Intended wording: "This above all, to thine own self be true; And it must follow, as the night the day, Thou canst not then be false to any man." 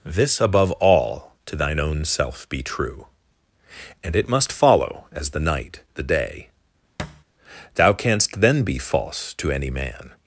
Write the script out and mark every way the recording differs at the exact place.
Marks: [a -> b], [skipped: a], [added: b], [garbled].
"This above all, to thine own self be true; And it must follow, as the night the day, Thou canst [skipped: not] then be false to any man."